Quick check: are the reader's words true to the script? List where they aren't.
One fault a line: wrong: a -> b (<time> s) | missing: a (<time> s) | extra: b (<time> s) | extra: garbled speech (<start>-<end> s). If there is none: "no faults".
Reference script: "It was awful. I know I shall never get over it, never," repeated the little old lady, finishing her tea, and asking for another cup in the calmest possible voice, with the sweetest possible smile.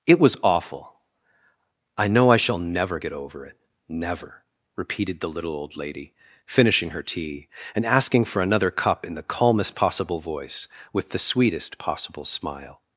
no faults